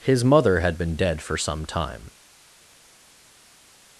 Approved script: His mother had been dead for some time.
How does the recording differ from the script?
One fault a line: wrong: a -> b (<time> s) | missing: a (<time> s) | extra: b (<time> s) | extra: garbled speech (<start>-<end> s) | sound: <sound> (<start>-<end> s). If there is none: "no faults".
no faults